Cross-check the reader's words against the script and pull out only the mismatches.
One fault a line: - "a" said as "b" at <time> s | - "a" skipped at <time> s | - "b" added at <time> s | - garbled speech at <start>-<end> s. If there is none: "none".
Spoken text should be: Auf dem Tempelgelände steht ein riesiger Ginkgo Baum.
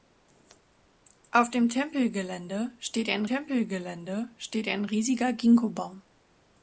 - "Tempelgelände steht ein" added at 3.2 s